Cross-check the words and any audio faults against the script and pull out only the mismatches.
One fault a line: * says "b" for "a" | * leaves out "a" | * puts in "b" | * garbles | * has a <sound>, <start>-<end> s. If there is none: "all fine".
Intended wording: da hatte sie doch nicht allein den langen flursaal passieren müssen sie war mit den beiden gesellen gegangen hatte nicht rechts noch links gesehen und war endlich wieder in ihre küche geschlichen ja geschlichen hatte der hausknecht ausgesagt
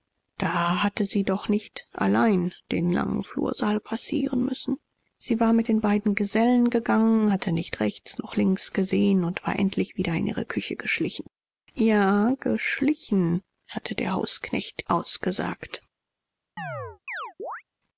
* has a chirp, 16.6-17.6 s